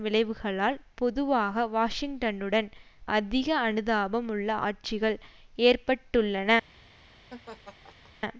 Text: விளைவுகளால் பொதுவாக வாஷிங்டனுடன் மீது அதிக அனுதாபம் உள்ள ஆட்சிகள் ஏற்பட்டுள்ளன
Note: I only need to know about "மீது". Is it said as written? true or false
false